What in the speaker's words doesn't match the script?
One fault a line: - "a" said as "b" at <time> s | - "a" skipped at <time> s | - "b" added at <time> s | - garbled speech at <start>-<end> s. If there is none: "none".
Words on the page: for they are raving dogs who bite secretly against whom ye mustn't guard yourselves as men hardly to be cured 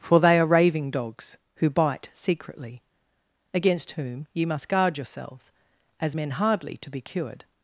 - "mustn't" said as "must" at 4.5 s